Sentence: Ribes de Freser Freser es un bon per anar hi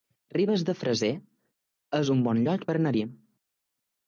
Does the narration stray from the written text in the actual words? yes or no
yes